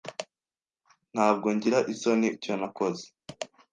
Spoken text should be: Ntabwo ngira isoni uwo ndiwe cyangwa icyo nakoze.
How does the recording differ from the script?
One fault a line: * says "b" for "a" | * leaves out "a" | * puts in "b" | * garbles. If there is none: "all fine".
* leaves out "uwo ndiwe cyangwa"